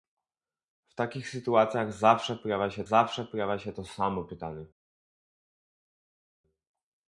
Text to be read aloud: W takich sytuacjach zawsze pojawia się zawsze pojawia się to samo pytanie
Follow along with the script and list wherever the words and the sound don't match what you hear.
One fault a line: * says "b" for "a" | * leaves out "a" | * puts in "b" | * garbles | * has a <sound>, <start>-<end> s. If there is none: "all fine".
all fine